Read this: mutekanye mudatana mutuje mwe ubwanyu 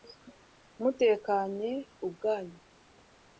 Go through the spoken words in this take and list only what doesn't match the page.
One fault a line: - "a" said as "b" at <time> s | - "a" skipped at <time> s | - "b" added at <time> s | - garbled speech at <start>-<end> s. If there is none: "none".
- "mudatana mutuje mwe" skipped at 1.7 s